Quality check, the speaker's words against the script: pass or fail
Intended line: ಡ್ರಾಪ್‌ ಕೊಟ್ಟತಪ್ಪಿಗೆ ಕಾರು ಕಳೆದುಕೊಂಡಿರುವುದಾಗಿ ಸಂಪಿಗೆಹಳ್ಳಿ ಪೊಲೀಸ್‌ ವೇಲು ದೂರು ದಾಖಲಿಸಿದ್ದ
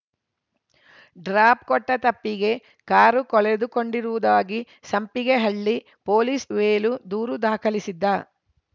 pass